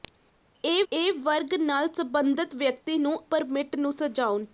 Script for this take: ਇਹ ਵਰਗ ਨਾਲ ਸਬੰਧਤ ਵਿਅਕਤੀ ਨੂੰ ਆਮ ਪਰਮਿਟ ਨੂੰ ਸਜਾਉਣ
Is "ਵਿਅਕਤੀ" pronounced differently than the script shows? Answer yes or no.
no